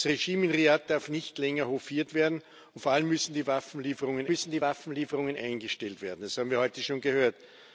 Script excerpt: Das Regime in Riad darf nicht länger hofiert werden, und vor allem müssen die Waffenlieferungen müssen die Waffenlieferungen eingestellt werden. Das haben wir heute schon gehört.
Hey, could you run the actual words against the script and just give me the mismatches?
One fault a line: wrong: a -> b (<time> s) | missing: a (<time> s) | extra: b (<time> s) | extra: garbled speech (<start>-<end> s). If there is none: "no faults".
no faults